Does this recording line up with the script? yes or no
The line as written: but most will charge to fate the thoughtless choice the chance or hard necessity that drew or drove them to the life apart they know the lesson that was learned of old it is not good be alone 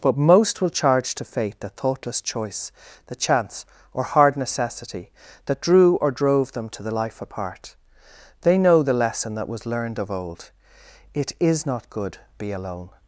yes